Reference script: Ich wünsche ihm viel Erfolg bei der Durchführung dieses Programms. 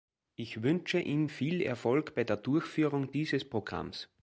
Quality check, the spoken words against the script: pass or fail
pass